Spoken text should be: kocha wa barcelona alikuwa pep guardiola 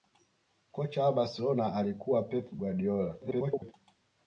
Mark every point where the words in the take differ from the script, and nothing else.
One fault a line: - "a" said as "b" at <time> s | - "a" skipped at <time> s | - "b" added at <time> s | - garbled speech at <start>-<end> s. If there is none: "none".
- garbled speech at 3.2-3.7 s